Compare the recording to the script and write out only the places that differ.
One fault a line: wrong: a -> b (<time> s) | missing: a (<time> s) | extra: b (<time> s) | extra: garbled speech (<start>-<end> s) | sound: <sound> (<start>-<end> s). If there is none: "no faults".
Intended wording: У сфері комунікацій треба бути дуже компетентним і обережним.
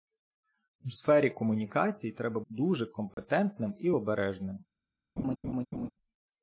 missing: бути (2.4 s)
sound: dropout (3.1-3.2 s)
sound: laugh (5.2-5.9 s)